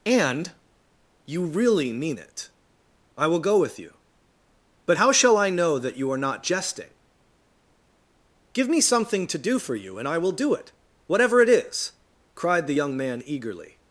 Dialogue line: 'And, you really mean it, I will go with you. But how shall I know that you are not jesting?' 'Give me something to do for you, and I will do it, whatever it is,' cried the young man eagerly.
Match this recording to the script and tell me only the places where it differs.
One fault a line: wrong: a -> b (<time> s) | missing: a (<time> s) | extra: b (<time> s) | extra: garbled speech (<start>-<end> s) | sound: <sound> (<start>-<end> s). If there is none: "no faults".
no faults